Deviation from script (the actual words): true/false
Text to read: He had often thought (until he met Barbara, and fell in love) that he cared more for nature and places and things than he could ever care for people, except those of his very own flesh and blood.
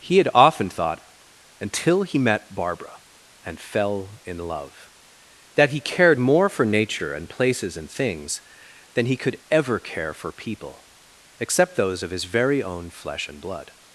false